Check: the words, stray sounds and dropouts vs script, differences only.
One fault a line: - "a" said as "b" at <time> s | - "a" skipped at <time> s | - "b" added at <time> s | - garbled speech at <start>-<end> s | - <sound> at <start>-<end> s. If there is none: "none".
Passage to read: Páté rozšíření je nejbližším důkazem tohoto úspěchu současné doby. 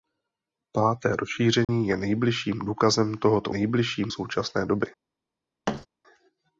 - dropout at 1.6-1.7 s
- "úspěchu" said as "nejbližším" at 3.5 s
- thud at 5.7-5.9 s